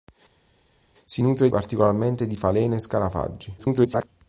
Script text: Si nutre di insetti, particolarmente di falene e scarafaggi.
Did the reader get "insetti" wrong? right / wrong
wrong